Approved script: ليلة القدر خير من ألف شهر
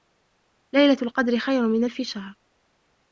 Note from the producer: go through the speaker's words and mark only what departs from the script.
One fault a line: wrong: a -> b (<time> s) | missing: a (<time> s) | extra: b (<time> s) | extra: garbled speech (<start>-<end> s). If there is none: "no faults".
no faults